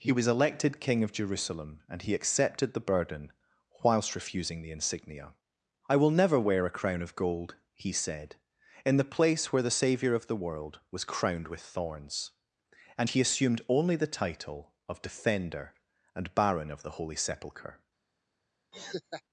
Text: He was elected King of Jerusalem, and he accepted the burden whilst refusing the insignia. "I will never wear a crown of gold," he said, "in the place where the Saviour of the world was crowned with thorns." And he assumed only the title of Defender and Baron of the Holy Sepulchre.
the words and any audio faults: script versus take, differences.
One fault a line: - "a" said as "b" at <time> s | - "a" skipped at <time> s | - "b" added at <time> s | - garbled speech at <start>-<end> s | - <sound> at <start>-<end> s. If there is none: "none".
- laugh at 18.7-19.2 s